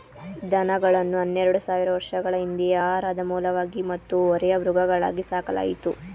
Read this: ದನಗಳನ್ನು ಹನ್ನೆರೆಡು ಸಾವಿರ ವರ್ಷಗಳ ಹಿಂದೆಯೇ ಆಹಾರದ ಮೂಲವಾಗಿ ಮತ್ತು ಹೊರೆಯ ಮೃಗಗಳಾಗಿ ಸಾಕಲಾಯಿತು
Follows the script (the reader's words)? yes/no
yes